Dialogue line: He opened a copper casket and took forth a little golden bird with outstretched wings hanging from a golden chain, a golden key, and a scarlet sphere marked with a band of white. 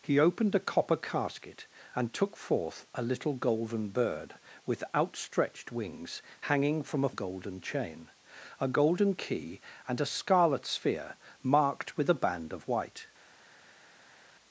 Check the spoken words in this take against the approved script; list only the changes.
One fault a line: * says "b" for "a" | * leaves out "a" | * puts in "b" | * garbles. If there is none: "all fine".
all fine